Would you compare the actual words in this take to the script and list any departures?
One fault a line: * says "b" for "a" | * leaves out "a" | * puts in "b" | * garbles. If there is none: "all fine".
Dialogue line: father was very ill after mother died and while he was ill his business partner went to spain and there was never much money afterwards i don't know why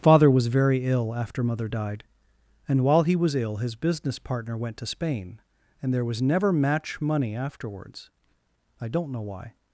* says "match" for "much"